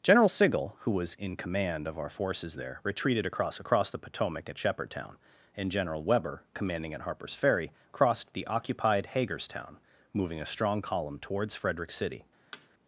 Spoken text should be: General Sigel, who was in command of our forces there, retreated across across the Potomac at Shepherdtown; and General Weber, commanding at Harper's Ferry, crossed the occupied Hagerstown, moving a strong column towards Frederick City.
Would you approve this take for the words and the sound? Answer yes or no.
no